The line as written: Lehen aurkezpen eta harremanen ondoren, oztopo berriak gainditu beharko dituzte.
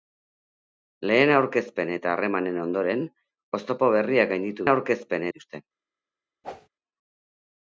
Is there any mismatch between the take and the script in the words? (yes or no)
yes